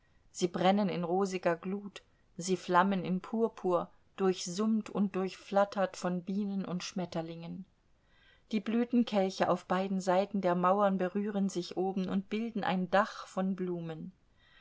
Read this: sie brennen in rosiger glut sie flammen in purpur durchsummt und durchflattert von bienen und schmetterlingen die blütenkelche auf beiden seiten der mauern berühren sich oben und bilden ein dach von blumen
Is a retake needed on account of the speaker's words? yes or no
no